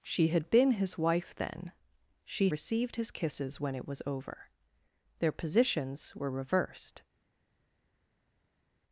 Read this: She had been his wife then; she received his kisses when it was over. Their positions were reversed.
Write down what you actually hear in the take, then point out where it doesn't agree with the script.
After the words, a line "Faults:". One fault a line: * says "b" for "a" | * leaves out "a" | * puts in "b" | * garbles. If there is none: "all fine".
She had been his wife then; she received his kisses when it was over. Their positions were reversed.
Faults:
all fine